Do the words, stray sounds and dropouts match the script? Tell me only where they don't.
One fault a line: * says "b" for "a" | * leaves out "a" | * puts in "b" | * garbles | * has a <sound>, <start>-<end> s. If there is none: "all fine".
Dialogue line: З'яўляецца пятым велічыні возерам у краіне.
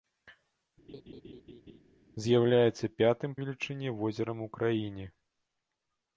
* has a laugh, 0.9-1.8 s